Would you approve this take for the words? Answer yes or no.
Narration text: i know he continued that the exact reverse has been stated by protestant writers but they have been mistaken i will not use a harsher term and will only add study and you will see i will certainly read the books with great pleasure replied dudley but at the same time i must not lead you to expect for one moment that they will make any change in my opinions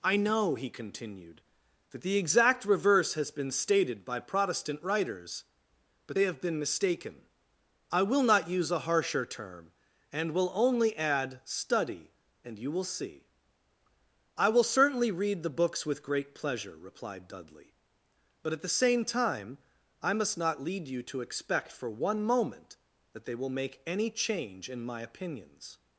yes